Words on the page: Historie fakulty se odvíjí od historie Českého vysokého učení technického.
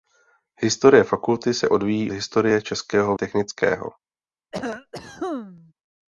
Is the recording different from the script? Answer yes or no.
yes